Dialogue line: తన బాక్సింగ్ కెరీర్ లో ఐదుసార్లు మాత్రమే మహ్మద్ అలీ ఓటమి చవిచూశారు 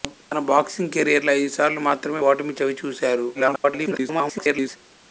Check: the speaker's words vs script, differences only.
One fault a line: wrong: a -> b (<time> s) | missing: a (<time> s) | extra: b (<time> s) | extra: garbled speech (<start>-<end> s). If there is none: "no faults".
missing: మహ్మద్ అలీ (2.2 s)
extra: garbled speech (3.3-4.8 s)